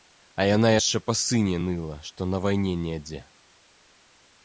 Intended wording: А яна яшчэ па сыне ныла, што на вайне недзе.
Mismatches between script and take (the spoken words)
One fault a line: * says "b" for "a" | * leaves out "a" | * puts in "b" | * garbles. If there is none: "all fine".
all fine